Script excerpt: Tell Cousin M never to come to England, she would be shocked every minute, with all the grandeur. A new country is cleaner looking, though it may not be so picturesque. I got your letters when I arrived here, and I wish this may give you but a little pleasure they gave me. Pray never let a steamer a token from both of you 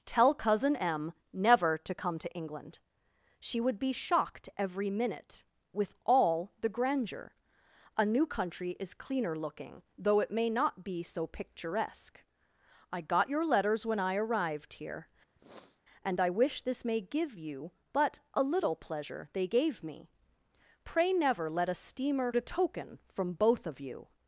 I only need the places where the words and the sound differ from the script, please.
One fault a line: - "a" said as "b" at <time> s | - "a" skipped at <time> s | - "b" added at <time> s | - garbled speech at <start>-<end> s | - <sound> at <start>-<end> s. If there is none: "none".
- sniff at 15.4-15.8 s